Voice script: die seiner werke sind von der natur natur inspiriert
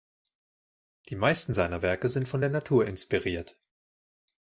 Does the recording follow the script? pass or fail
fail